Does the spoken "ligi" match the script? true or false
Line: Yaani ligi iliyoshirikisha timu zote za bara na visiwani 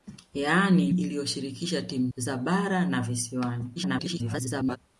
false